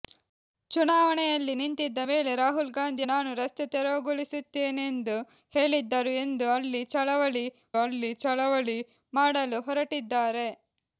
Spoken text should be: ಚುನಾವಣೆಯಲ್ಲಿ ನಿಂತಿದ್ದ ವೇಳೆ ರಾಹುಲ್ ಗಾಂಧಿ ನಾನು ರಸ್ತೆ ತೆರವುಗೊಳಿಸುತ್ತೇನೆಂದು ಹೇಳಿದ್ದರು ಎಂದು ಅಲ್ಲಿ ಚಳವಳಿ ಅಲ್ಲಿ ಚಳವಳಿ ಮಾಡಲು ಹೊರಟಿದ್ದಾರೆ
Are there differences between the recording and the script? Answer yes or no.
no